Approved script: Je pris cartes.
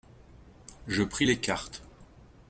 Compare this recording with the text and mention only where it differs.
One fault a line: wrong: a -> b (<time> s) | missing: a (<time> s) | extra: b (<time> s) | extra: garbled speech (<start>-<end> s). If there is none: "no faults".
extra: les (1.2 s)